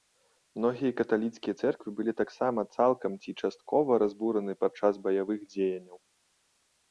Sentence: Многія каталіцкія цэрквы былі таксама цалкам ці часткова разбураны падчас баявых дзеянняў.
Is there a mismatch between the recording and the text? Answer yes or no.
no